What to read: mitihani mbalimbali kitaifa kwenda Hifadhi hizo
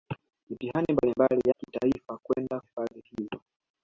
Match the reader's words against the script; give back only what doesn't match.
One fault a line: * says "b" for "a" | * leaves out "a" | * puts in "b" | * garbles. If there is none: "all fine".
all fine